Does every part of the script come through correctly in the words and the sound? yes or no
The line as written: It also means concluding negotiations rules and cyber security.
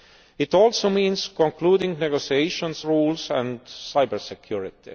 yes